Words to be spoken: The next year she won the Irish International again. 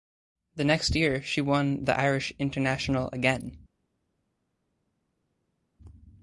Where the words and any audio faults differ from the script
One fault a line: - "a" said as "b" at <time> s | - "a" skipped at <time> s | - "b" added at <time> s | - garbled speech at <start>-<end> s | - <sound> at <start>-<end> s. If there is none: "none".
none